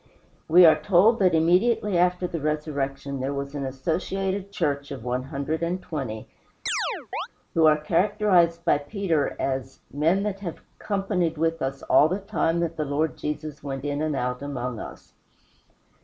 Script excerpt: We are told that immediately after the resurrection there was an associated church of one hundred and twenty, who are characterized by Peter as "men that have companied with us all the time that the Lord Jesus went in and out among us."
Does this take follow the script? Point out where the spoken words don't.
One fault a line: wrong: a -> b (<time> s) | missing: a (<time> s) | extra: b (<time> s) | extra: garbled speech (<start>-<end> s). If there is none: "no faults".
no faults